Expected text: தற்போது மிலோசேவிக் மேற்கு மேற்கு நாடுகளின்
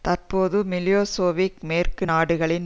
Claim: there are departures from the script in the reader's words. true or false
true